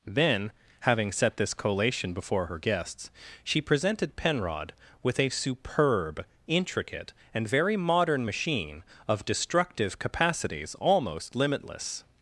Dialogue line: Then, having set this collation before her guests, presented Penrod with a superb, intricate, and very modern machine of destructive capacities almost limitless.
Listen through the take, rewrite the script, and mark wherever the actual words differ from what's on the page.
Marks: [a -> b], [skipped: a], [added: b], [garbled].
Then, having set this collation before her guests, [added: she] presented Penrod with a superb, intricate, and very modern machine of destructive capacities almost limitless.